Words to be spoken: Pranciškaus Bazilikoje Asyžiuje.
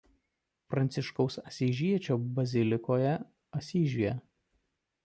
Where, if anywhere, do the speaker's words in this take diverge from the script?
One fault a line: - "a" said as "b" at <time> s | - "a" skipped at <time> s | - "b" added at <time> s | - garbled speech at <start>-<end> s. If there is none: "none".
- "Asyžiečio" added at 1.5 s